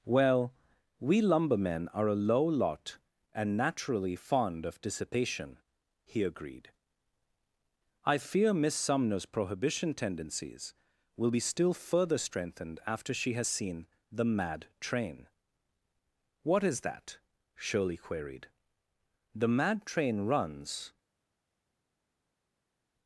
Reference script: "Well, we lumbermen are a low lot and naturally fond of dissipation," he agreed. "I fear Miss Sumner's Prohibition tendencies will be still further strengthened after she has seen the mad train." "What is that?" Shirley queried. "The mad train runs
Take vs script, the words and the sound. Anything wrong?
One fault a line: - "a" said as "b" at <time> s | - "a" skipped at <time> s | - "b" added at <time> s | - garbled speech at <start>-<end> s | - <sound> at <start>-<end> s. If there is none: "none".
none